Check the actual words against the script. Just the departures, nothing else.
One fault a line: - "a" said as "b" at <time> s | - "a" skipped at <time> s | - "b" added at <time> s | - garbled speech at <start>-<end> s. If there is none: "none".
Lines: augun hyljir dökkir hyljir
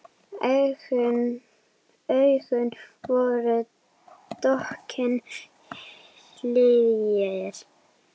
- "hyljir" said as "voru" at 3.1 s